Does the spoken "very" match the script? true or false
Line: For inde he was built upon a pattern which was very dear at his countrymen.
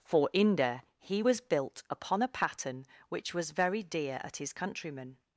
true